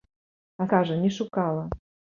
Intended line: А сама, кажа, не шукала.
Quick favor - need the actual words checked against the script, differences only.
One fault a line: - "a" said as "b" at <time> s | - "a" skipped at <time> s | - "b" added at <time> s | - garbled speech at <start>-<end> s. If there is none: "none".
- "сама" skipped at 0.7 s